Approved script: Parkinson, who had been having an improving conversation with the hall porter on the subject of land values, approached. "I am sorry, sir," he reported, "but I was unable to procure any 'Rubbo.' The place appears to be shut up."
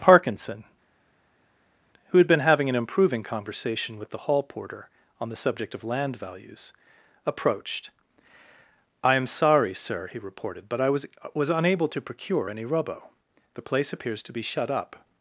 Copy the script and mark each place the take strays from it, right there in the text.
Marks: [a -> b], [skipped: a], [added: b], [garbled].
Parkinson, who had been having an improving conversation with the hall porter on the subject of land values, approached. "I am sorry, sir," he reported, "but I was [added: was] unable to procure any 'Rubbo.' The place appears to be shut up."